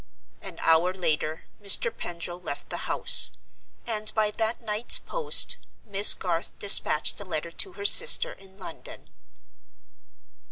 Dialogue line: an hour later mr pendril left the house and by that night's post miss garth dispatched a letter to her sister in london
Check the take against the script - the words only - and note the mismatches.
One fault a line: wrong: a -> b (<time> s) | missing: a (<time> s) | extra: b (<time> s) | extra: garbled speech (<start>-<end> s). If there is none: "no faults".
no faults